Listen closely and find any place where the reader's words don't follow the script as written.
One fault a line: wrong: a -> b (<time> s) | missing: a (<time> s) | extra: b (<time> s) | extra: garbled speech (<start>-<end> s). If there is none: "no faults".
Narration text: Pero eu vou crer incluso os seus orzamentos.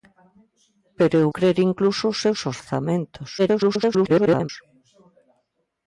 missing: vou (1.3 s)
extra: garbled speech (3.4-4.5 s)